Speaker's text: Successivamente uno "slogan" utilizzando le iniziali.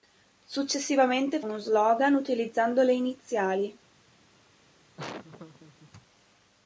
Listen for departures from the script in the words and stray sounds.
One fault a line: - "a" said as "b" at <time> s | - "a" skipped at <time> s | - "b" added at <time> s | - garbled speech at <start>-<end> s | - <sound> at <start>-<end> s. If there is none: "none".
- laugh at 5.0-5.9 s